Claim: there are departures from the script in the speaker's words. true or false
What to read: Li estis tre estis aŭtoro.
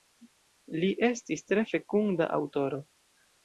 true